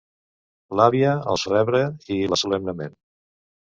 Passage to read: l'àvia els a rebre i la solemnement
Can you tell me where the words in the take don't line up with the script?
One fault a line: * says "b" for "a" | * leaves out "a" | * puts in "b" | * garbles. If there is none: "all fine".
all fine